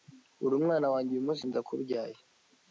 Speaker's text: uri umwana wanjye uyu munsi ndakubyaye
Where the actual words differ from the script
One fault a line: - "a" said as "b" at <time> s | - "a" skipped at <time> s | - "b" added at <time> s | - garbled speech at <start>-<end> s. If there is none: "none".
none